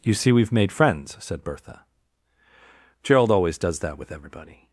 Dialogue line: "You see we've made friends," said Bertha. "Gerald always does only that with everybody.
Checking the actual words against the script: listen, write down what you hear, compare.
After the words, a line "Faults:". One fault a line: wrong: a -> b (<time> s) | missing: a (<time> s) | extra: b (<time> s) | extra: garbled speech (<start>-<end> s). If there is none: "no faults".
"You see we've made friends," said Bertha. "Gerald always does that with everybody.
Faults:
missing: only (3.8 s)